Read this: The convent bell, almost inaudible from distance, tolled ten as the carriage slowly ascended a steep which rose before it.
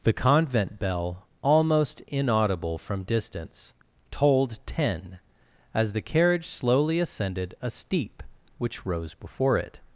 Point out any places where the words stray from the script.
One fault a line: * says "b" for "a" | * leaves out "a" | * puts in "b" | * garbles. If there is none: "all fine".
all fine